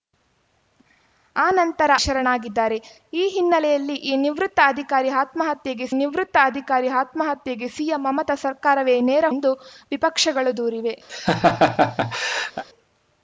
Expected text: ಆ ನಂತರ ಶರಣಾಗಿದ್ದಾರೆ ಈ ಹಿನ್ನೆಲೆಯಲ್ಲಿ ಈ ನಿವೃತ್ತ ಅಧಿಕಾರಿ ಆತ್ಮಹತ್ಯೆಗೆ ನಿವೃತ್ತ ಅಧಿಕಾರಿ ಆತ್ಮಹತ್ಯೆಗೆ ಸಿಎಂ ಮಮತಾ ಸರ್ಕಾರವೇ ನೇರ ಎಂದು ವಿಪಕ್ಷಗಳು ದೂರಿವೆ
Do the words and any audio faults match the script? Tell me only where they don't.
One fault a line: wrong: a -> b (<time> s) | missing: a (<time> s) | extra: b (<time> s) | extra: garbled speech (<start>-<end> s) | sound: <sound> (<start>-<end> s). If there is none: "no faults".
sound: laugh (11.1-12.6 s)